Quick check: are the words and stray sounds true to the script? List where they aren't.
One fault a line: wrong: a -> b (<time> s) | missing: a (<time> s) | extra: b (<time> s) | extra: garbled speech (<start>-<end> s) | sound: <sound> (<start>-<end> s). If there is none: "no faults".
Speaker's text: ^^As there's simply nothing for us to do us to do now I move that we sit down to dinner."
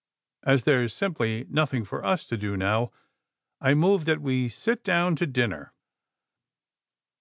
missing: us to do (2.6 s)